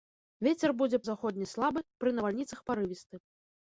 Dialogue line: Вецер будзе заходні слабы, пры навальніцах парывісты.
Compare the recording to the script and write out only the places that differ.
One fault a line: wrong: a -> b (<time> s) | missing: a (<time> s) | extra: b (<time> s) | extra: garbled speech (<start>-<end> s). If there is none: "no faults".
no faults